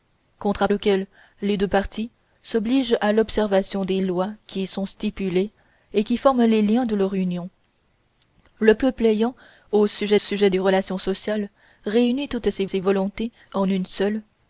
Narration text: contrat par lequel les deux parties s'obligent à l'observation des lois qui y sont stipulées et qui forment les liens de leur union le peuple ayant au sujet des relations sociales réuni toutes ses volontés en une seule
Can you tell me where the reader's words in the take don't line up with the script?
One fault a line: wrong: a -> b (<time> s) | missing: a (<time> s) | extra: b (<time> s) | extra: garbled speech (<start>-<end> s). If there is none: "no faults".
missing: par (0.7 s)
extra: sujet (10.2 s)
extra: ses (12.6 s)